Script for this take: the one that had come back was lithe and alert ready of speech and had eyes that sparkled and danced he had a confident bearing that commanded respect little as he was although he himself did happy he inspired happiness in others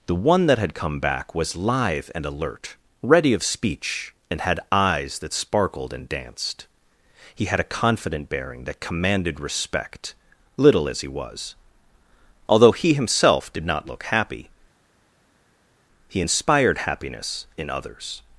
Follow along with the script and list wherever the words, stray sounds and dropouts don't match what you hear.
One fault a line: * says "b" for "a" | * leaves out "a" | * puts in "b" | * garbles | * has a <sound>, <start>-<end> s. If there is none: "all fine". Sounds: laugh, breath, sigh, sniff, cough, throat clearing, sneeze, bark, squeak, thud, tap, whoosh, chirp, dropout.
* puts in "not look"